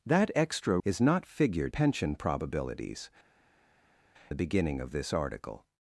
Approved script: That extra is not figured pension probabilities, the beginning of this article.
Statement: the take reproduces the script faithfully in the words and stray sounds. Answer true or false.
true